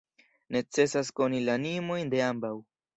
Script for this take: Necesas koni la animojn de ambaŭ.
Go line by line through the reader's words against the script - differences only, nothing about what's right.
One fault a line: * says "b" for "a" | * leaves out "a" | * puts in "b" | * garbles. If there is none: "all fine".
all fine